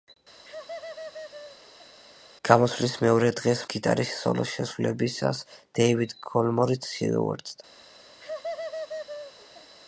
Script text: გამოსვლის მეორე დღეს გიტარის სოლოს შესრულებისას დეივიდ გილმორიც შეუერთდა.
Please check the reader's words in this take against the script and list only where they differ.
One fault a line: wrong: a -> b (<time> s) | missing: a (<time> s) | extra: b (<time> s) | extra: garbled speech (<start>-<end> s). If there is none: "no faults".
no faults